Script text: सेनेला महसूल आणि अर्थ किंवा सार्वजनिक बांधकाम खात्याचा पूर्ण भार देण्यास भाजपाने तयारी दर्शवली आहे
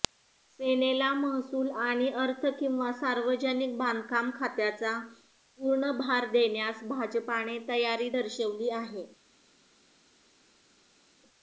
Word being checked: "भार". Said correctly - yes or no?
yes